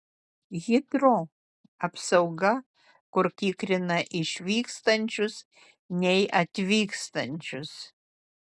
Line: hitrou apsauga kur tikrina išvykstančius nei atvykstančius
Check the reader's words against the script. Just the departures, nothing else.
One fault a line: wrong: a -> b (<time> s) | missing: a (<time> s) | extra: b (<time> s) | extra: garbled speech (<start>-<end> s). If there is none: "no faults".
no faults